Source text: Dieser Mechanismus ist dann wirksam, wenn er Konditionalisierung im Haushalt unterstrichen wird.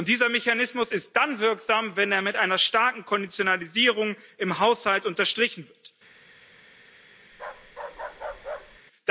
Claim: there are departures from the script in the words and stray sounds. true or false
true